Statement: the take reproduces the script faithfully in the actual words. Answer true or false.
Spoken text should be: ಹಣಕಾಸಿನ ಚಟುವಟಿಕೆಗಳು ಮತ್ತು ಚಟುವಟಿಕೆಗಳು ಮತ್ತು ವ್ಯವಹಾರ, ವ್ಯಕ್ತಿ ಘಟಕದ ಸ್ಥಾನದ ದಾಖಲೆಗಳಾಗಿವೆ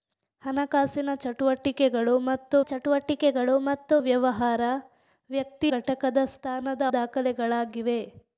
true